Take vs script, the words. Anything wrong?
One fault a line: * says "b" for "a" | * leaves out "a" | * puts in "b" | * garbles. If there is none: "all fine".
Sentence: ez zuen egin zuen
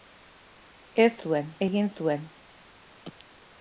all fine